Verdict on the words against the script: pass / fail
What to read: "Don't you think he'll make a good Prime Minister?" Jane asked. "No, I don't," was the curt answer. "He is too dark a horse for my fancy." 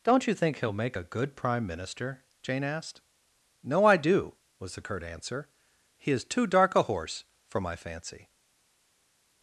fail